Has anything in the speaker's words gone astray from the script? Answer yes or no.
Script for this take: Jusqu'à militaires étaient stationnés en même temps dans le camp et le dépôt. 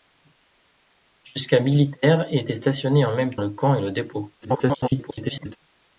yes